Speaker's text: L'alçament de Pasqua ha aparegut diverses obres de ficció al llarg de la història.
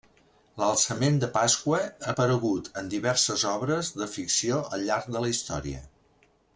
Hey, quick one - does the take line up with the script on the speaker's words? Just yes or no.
no